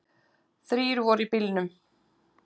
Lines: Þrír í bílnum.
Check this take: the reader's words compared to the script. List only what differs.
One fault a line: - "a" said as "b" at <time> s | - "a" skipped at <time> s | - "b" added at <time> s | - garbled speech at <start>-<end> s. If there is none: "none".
- "voru" added at 1.1 s